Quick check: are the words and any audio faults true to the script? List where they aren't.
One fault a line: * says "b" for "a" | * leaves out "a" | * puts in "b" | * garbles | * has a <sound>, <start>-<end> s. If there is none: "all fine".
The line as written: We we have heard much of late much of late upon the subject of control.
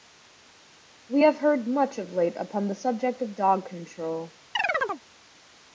* leaves out "we"
* leaves out "much of late"
* puts in "dog"
* has a chirp, 4.5-5.0 s